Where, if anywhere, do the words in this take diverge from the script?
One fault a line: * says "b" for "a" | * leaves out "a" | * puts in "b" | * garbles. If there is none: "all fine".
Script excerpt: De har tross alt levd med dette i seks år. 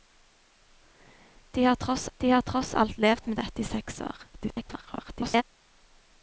* puts in "de har tross"
* garbles